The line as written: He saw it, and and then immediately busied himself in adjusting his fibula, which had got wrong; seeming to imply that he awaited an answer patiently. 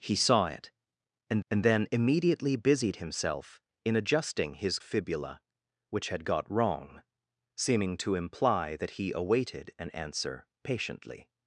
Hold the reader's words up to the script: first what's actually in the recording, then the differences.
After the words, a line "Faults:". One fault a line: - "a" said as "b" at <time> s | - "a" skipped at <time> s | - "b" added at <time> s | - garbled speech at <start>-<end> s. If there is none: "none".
He saw it, and and then immediately busied himself in adjusting his fibula, which had got wrong; seeming to imply that he awaited an answer patiently.
Faults:
none